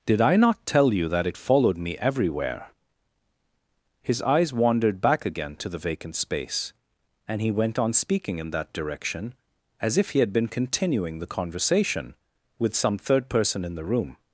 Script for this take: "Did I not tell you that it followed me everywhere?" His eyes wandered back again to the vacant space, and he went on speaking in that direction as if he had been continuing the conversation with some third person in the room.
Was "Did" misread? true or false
false